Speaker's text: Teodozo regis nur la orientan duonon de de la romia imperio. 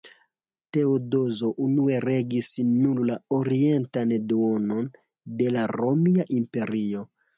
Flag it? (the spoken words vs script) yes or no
yes